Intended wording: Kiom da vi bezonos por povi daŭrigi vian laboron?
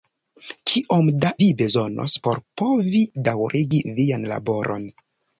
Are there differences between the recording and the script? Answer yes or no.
no